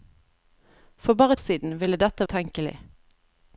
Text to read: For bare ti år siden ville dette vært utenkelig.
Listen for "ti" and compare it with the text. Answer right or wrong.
wrong